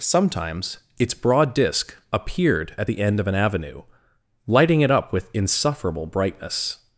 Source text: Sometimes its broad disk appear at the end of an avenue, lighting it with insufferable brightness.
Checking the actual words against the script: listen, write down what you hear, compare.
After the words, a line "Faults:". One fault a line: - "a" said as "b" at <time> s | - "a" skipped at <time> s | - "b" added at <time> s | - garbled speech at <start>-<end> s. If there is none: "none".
Sometimes its broad disk appeared at the end of an avenue, lighting it up with insufferable brightness.
Faults:
- "appear" said as "appeared" at 2.1 s
- "up" added at 4.9 s